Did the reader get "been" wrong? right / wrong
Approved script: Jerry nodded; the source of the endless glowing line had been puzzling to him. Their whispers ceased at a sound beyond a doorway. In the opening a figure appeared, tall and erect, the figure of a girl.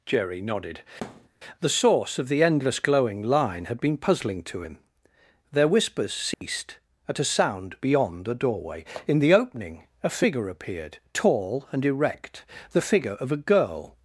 right